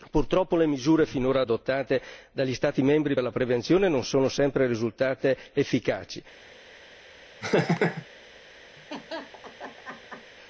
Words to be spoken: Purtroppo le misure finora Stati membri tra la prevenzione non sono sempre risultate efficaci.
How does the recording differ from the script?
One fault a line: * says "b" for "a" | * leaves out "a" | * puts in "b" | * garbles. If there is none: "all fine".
* puts in "adottate dagli"
* says "per" for "tra"